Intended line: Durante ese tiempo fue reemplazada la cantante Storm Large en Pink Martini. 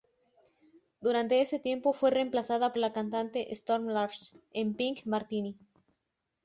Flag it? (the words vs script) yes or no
no